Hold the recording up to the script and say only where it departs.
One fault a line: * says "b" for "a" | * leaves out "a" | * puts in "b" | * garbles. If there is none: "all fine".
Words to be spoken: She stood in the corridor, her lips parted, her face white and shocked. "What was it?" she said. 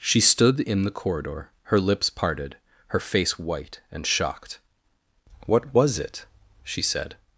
all fine